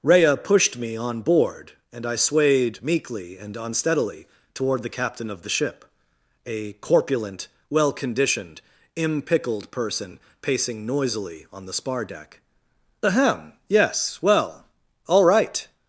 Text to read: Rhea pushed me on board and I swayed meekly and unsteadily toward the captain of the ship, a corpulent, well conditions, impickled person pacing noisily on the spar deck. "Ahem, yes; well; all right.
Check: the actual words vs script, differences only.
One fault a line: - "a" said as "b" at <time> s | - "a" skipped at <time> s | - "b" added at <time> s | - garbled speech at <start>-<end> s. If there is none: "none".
- "conditions" said as "conditioned" at 7.9 s